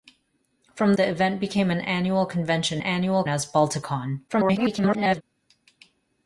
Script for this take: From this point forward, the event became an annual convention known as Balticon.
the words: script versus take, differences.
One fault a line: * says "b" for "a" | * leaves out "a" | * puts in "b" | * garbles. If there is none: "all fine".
* leaves out "this point forward"
* says "annual" for "known"
* garbles